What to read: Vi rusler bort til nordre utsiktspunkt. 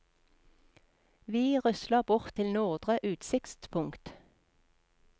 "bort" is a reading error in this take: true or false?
false